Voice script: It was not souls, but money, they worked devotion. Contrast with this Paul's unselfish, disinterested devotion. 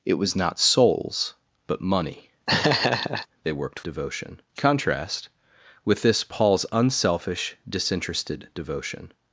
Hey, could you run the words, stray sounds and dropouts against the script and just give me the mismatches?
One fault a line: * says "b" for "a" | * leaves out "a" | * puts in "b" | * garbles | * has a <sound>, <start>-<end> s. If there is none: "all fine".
* has a laugh, 2.5-3.3 s